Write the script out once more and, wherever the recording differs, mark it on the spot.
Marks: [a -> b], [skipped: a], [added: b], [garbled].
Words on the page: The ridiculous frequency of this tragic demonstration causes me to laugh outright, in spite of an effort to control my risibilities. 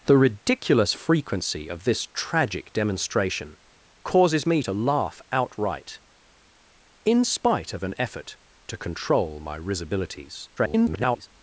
The ridiculous frequency of this tragic demonstration causes me to laugh outright, in spite of an effort to control my risibilities. [garbled]